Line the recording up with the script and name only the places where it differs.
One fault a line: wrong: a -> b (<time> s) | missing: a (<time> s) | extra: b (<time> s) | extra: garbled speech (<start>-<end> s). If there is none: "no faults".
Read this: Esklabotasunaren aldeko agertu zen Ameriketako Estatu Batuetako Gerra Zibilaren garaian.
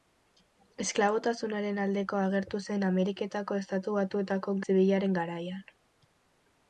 missing: Gerra (4.6 s)